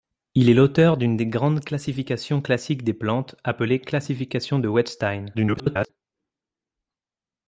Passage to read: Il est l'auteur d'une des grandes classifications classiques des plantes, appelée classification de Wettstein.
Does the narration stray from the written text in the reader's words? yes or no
yes